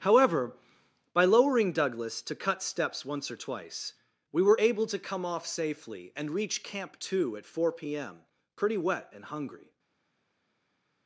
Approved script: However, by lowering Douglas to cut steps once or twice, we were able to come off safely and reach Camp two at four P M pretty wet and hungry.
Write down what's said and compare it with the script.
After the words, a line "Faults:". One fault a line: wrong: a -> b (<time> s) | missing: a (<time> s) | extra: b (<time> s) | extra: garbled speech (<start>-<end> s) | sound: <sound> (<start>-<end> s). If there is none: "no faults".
However, by lowering Douglas to cut steps once or twice, we were able to come off safely and reach Camp two at four P M pretty wet and hungry.
Faults:
no faults